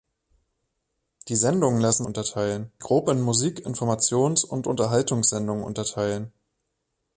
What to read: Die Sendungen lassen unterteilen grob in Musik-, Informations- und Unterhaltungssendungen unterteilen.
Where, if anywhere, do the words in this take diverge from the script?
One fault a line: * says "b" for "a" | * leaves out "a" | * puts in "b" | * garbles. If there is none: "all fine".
all fine